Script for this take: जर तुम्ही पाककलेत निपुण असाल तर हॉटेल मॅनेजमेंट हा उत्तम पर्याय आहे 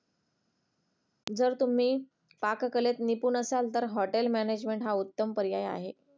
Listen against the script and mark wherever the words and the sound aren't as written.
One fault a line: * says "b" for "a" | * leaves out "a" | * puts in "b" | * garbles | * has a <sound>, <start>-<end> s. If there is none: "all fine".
all fine